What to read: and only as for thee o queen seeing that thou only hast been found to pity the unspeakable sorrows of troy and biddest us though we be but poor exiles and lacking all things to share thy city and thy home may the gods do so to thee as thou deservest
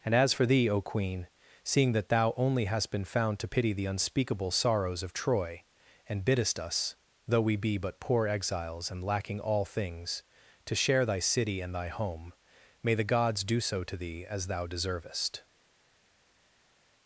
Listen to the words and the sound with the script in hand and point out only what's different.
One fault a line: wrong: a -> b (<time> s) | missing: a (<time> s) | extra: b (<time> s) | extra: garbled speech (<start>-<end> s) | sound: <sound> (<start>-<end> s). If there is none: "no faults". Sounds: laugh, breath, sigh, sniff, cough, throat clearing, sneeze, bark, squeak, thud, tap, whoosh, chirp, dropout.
missing: only (0.1 s)